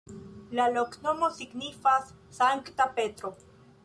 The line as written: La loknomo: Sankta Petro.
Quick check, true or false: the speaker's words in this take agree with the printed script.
false